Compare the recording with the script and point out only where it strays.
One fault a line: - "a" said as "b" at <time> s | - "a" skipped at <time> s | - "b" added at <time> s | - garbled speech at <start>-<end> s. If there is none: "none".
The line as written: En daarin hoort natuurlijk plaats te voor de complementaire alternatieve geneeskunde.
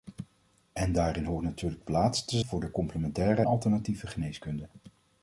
none